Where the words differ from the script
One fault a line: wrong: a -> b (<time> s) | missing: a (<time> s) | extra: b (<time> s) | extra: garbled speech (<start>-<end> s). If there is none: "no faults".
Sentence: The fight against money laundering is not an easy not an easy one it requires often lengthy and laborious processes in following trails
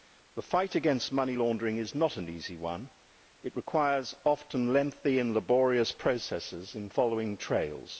missing: not an easy (2.5 s)